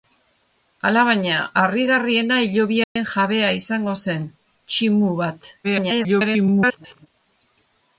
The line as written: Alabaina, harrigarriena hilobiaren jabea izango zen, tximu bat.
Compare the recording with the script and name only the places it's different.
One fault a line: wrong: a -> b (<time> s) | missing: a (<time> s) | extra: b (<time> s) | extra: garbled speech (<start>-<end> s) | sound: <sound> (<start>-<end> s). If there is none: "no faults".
sound: dropout (2.8-3.0 s)
extra: garbled speech (5.6-7.1 s)